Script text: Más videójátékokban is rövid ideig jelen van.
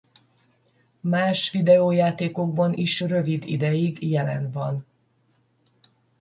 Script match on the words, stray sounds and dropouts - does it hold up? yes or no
yes